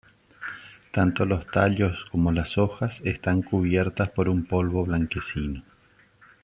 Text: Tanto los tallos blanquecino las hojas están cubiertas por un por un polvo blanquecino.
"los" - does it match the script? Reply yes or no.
yes